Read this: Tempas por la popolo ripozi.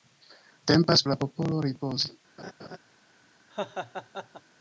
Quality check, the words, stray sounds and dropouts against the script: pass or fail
fail